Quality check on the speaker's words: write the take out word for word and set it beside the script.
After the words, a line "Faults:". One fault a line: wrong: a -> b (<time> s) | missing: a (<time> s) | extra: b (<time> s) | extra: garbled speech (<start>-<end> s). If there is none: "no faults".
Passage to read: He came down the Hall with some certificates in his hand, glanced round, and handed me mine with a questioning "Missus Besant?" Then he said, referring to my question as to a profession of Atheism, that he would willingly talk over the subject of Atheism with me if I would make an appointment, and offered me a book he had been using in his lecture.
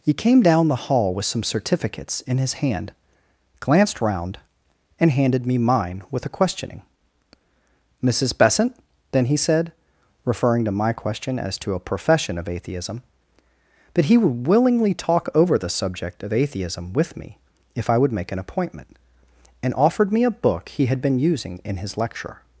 He came down the Hall with some certificates in his hand, glanced round, and handed me mine with a questioning "Missus Besant?" Then he said, referring to my question as to a profession of Atheism, that he would willingly talk over the subject of Atheism with me if I would make an appointment, and offered me a book he had been using in his lecture.
Faults:
no faults